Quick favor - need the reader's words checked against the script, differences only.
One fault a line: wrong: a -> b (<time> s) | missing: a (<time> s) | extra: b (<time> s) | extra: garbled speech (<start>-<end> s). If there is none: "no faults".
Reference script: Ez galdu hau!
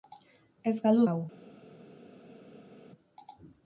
no faults